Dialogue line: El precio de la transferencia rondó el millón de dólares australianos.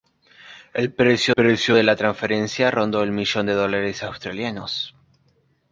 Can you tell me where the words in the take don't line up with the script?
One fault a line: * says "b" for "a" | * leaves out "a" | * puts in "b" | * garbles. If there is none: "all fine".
* puts in "precio"